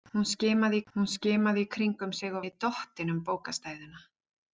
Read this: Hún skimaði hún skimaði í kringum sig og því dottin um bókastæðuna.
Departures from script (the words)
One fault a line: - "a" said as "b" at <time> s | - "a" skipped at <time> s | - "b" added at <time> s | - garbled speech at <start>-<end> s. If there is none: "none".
none